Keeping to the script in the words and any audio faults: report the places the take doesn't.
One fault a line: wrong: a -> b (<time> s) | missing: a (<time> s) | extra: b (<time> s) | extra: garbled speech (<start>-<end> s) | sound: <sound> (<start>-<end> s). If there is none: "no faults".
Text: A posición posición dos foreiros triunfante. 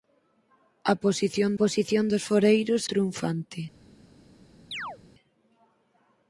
sound: chirp (4.7-5.0 s)